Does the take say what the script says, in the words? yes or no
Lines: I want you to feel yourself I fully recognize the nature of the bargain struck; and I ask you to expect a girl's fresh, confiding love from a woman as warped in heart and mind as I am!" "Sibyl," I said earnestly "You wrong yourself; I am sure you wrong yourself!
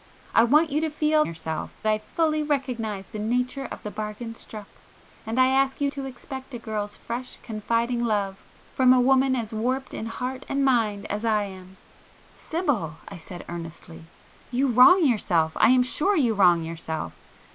yes